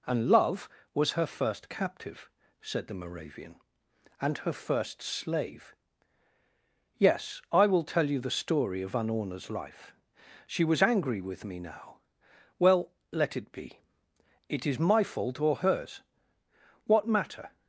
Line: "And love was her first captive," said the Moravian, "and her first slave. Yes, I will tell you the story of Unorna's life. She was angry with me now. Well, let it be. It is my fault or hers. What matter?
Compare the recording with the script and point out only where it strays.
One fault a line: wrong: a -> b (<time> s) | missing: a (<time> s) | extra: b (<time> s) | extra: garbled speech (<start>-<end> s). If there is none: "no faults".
no faults